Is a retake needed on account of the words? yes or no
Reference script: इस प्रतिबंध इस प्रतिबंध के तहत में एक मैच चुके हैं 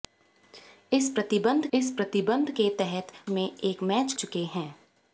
no